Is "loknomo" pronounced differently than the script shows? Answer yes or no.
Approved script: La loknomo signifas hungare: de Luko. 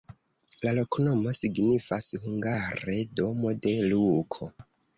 no